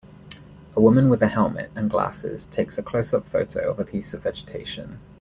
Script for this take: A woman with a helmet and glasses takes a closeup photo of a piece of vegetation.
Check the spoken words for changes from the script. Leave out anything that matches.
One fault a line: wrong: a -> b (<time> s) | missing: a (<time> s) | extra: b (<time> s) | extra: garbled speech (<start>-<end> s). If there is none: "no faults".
no faults